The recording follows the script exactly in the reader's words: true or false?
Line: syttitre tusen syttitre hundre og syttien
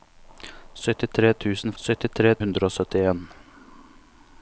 true